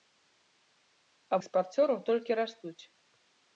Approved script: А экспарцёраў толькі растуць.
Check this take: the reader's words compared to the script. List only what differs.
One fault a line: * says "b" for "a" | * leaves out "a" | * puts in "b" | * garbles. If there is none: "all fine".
all fine